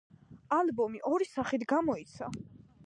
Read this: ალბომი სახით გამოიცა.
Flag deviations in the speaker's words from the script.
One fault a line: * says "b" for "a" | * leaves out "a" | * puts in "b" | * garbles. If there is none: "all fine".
* puts in "ორი"